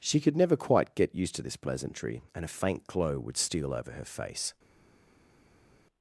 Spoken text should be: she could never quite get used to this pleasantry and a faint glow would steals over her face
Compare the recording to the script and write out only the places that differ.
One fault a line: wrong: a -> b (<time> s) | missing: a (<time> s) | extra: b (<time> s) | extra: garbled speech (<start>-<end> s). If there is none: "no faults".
wrong: steals -> steal (3.3 s)